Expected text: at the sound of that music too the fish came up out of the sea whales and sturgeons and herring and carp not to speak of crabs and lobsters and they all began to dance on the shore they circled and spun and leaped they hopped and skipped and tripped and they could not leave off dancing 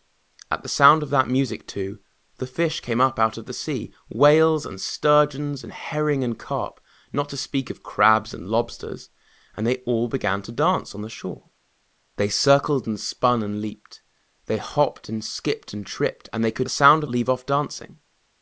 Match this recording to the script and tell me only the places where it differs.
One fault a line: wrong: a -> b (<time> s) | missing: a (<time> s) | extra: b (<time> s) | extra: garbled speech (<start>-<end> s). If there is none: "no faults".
wrong: not -> sound (16.7 s)